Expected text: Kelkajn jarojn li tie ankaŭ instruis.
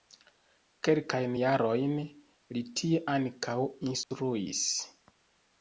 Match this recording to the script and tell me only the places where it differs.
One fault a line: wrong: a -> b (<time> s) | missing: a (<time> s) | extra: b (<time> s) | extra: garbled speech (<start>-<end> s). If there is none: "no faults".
no faults